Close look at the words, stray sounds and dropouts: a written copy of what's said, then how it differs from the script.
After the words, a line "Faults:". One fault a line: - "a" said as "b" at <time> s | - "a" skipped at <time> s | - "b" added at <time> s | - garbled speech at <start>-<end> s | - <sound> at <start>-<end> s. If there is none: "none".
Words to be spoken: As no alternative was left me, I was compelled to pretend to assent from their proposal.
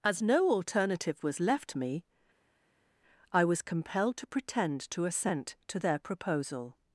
As no alternative was left me, I was compelled to pretend to assent to their proposal.
Faults:
- "from" said as "to" at 5.7 s